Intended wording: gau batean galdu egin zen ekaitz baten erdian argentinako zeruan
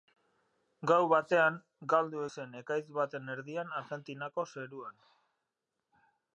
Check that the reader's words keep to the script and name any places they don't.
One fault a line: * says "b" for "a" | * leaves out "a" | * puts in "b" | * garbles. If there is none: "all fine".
* leaves out "egin"